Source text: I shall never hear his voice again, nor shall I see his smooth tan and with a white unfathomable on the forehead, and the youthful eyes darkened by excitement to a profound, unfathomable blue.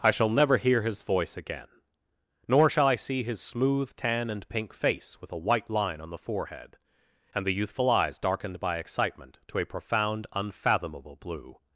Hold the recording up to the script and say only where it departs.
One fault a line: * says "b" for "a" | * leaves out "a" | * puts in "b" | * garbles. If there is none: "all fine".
* puts in "pink face"
* says "line" for "unfathomable"